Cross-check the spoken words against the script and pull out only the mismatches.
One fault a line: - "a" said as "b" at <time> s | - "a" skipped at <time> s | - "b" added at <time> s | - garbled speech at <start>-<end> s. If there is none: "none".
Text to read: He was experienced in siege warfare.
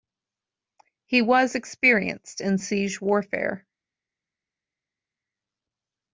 none